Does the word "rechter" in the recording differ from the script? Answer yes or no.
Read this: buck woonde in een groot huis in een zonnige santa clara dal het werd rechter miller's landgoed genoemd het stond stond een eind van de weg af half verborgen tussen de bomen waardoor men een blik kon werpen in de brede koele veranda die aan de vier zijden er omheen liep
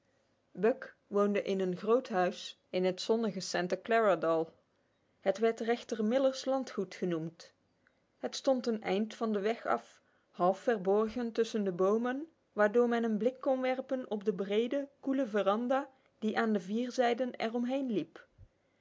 no